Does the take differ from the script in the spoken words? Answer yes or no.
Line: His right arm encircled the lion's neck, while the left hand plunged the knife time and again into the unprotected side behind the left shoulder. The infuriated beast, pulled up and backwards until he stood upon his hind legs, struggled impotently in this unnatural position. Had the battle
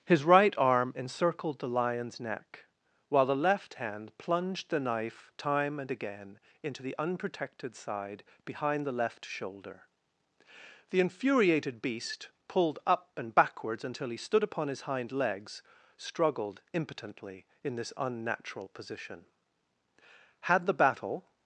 no